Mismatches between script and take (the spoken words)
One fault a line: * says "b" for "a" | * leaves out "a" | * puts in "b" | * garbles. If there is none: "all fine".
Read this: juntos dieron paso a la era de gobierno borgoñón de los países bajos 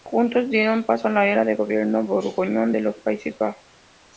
all fine